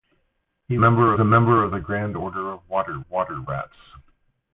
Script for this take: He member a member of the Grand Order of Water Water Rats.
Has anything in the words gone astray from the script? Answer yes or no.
no